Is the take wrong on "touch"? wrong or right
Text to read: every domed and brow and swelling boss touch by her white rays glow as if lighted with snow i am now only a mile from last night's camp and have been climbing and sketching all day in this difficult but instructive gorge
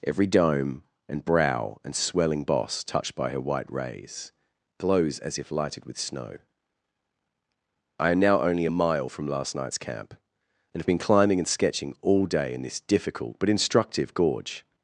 wrong